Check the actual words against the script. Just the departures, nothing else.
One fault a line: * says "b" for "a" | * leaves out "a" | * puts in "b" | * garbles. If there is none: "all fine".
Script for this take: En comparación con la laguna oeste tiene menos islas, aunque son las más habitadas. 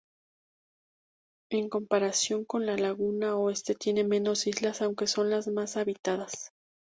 all fine